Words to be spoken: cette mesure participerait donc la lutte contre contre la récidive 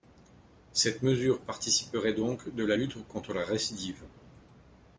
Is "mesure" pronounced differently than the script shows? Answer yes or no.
no